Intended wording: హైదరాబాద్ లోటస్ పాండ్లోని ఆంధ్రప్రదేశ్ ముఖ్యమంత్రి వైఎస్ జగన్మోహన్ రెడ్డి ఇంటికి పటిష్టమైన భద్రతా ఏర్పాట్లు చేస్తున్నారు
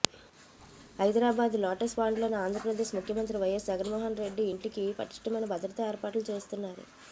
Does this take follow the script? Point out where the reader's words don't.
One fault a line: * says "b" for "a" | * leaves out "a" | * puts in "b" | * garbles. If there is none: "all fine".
all fine